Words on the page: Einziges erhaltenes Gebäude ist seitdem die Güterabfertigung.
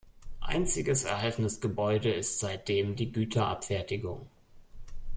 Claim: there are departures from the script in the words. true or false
false